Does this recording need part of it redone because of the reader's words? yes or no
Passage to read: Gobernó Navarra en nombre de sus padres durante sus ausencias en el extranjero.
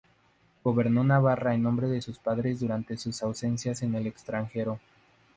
no